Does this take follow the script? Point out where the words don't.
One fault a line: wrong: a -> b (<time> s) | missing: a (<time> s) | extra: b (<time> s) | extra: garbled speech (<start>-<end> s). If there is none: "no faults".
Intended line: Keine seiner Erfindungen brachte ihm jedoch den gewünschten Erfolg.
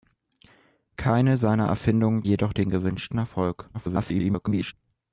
missing: brachte ihm (2.2 s)
extra: garbled speech (3.7-4.7 s)